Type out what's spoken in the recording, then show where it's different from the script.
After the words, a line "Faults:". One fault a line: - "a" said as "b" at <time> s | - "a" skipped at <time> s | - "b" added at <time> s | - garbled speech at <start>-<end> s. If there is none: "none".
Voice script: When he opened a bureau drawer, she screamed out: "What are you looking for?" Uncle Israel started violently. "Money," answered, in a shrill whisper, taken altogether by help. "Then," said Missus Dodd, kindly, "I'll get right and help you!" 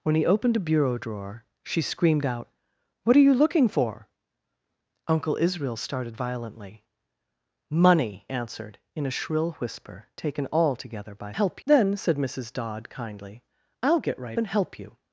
When he opened a bureau drawer, she screamed out: "What are you looking for?" Uncle Israel started violently. "Money," answered, in a shrill whisper, taken altogether by help. "Then," said Missus Dodd, kindly, "I'll get right and help you!"
Faults:
none